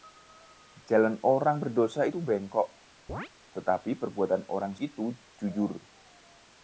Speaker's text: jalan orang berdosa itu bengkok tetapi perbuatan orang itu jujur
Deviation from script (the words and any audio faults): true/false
true